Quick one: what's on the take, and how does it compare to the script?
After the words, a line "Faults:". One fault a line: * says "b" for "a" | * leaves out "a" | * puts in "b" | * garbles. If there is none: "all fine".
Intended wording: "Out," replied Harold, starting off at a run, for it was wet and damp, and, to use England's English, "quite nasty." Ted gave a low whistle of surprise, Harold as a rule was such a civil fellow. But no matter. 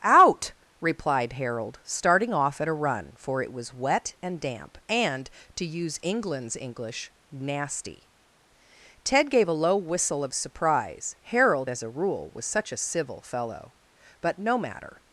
"Out," replied Harold, starting off at a run, for it was wet and damp, and, to use England's English, "nasty." Ted gave a low whistle of surprise, Harold as a rule was such a civil fellow. But no matter.
Faults:
* leaves out "quite"